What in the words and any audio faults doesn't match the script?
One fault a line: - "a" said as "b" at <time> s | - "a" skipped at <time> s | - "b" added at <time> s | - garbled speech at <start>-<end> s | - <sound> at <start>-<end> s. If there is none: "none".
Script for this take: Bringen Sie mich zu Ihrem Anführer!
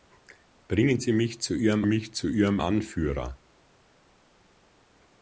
- "mich zu Ihrem" added at 1.8 s